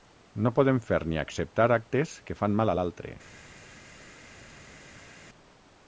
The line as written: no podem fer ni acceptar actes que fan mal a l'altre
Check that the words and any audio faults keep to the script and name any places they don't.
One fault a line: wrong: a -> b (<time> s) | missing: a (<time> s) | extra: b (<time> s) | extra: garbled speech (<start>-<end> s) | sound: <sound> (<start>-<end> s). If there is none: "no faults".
no faults